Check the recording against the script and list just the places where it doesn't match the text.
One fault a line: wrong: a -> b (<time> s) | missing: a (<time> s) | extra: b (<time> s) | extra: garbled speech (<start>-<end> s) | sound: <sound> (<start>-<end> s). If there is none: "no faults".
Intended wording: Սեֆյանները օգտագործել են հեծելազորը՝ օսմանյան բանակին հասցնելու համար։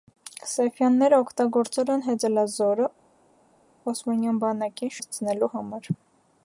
no faults